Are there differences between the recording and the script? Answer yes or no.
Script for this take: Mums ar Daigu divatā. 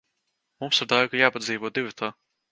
yes